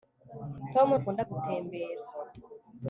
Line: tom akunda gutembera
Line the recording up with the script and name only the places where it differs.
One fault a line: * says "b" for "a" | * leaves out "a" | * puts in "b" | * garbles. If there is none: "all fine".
all fine